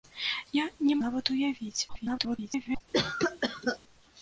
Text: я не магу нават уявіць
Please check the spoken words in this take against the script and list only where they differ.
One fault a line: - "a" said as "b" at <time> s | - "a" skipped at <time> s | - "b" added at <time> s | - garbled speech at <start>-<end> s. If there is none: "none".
- "магу" skipped at 0.9 s
- garbled speech at 1.9-2.8 s